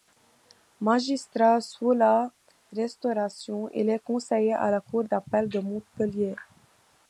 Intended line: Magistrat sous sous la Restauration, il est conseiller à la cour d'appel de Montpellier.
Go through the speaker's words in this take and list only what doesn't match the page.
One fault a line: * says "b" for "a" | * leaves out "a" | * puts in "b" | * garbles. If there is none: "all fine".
* leaves out "sous"